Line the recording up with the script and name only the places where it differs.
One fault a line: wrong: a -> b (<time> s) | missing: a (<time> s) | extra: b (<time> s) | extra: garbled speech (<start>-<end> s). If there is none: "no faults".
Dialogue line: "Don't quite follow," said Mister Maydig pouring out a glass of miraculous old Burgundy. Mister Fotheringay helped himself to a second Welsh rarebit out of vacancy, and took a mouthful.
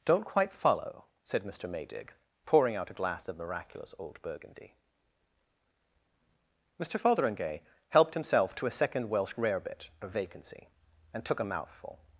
missing: out (9.9 s)